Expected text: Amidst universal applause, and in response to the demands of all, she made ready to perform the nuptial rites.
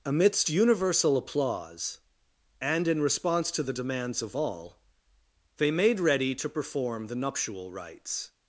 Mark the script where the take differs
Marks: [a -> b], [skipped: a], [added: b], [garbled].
Amidst universal applause, and in response to the demands of all, [she -> they] made ready to perform the nuptial rites.